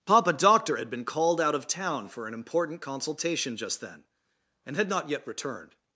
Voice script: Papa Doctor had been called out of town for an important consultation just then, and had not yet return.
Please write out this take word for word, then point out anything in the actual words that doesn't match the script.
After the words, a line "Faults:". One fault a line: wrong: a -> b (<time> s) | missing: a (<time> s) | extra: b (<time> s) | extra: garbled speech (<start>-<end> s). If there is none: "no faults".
Papa Doctor had been called out of town for an important consultation just then, and had not yet returned.
Faults:
wrong: return -> returned (5.3 s)